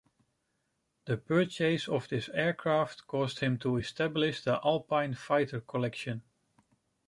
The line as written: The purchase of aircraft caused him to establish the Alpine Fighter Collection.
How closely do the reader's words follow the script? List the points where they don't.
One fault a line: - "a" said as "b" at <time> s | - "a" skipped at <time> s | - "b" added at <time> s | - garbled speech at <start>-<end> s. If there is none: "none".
- "this" added at 2.1 s